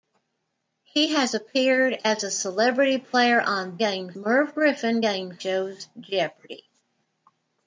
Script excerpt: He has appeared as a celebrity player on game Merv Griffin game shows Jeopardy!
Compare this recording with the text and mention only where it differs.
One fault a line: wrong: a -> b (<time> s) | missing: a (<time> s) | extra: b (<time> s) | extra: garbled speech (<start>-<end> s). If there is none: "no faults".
no faults